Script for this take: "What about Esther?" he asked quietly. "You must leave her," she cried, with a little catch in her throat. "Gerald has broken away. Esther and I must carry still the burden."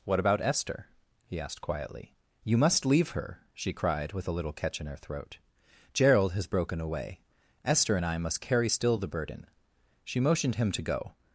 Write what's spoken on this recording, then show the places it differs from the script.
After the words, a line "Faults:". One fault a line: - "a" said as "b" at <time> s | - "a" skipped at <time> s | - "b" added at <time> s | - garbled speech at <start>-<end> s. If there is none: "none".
"What about Esther?" he asked quietly. "You must leave her," she cried, with a little catch in her throat. "Gerald has broken away. Esther and I must carry still the burden." She motioned him to go
Faults:
- "She motioned him to go" added at 10.0 s